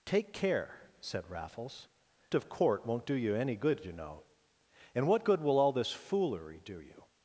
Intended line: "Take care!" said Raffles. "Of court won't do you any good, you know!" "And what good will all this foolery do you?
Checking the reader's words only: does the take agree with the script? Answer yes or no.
yes